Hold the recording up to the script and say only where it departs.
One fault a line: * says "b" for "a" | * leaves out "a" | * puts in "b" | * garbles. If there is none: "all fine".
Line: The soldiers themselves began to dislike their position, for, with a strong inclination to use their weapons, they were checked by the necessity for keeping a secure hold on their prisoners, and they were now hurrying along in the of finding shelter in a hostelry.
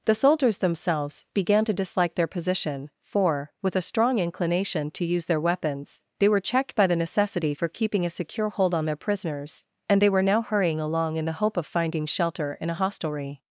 * puts in "hope"